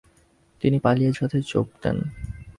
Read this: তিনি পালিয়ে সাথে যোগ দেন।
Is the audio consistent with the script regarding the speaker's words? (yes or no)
yes